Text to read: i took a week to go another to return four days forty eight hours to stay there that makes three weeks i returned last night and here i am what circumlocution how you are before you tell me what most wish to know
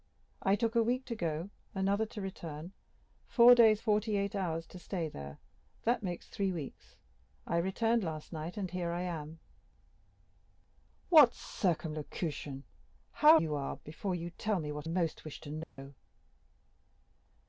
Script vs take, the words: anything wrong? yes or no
no